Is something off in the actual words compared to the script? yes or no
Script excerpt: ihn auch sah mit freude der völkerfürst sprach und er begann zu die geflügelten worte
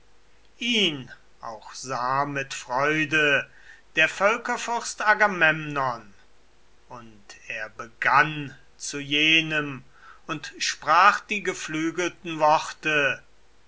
yes